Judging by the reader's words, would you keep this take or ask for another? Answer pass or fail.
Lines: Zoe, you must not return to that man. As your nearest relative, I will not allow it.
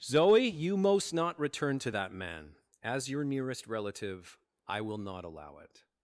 fail